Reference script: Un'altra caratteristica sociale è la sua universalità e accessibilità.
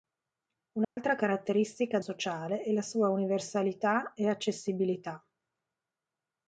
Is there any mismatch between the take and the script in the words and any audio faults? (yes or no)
yes